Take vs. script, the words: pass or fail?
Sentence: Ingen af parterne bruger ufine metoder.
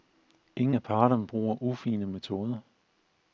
pass